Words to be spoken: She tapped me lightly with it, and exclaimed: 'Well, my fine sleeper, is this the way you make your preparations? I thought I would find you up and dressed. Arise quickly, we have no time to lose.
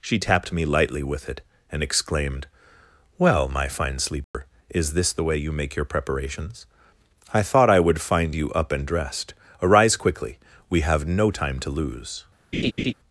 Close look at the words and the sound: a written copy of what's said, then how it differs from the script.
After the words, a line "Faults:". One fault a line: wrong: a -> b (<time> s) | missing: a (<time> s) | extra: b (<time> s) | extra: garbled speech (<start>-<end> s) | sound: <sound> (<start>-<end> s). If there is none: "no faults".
She tapped me lightly with it, and exclaimed: 'Well, my fine sleeper, is this the way you make your preparations? I thought I would find you up and dressed. Arise quickly, we have no time to lose.
Faults:
sound: dropout (4.2-4.3 s)
sound: laugh (12.5-12.9 s)